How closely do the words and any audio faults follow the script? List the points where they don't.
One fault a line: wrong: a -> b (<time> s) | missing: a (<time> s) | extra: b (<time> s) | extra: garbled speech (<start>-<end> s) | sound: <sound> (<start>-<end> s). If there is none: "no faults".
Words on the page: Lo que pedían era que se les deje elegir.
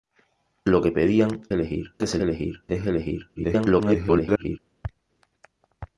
wrong: era -> elegir (1.5 s)
wrong: les -> elegir (2.2 s)
extra: garbled speech (3.4-4.6 s)